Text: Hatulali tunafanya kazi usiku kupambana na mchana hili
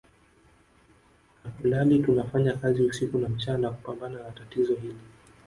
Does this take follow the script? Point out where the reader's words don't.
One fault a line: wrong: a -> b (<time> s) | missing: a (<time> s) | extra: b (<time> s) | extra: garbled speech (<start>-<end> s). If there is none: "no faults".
extra: na mchana (3.2 s)
wrong: mchana -> tatizo (4.3 s)